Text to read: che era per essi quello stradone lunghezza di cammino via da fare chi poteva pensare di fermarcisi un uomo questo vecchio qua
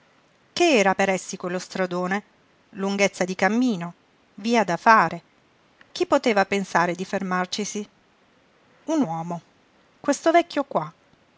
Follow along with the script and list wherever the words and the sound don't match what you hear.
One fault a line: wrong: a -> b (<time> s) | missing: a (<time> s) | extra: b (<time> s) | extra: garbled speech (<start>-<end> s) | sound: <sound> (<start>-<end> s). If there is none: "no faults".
no faults